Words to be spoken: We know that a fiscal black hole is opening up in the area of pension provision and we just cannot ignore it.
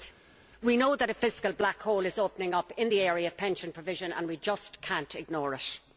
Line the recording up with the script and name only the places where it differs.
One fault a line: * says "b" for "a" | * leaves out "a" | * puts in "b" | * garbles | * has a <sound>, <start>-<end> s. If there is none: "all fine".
all fine